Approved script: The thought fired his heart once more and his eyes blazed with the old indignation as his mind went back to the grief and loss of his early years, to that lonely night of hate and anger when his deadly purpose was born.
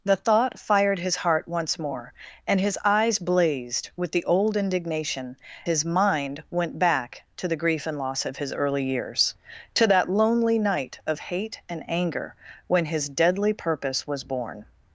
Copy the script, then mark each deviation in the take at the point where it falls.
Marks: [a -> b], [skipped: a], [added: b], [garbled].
The thought fired his heart once more and his eyes blazed with the old indignation [skipped: as] his mind went back to the grief and loss of his early years, to that lonely night of hate and anger when his deadly purpose was born.